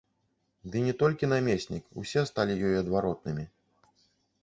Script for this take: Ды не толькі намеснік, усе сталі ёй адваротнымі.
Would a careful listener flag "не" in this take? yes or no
no